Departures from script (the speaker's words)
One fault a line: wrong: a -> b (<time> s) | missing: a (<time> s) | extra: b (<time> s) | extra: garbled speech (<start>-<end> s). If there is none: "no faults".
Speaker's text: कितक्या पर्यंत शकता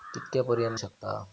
no faults